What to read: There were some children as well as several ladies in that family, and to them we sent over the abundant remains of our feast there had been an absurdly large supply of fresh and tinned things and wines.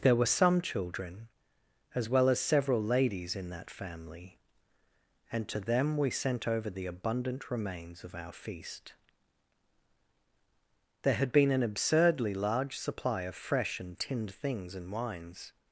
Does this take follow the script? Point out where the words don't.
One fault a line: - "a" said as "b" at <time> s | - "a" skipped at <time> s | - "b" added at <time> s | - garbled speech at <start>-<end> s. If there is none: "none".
none